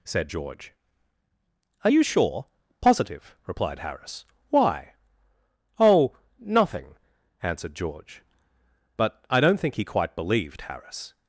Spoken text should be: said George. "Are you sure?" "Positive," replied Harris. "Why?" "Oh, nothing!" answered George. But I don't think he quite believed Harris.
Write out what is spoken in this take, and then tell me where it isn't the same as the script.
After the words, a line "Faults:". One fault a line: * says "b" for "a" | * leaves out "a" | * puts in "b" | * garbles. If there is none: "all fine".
said George. "Are you sure?" "Positive," replied Harris. "Why?" "Oh, nothing!" answered George. But I don't think he quite believed Harris.
Faults:
all fine